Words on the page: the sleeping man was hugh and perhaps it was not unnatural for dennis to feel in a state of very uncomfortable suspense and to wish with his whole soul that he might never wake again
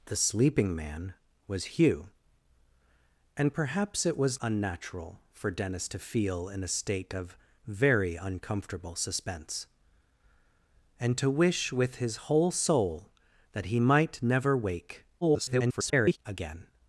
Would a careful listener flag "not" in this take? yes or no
yes